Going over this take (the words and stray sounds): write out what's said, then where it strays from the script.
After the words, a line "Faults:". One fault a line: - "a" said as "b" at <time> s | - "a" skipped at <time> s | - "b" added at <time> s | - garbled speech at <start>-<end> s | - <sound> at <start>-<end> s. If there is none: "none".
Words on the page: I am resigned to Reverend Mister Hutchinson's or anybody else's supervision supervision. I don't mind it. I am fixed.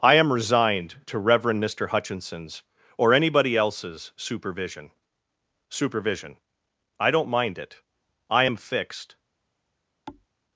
I am resigned to Reverend Mister Hutchinson's or anybody else's supervision supervision. I don't mind it. I am fixed.
Faults:
- thud at 10.1-10.3 s